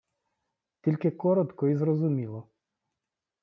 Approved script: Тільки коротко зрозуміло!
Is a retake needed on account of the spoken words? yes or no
yes